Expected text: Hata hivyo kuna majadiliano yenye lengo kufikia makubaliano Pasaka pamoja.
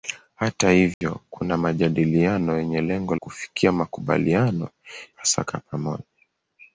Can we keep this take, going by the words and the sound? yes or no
no